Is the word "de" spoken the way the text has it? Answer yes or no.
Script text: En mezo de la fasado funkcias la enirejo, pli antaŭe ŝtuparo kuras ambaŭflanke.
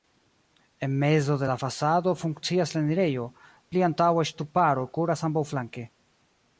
yes